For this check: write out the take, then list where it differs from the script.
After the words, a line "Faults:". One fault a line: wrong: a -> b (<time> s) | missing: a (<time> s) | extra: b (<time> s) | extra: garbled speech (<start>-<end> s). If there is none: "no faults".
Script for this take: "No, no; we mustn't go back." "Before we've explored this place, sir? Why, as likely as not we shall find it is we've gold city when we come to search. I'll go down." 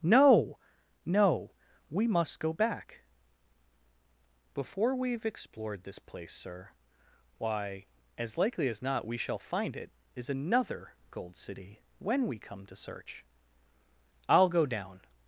"No, no; we must go back." "Before we've explored this place, sir? Why, as likely as not we shall find it is another gold city when we come to search. I'll go down."
Faults:
wrong: mustn't -> must (2.1 s)
wrong: we've -> another (10.3 s)